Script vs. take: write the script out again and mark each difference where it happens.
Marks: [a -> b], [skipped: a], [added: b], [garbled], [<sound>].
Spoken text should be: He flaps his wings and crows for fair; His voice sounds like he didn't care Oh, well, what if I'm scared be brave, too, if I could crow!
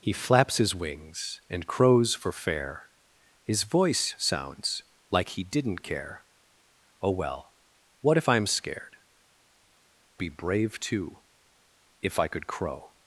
He flaps his wings and crows for fair; His voice sounds like he didn't care Oh, well, what if I'm scared be brave, too, if I could crow!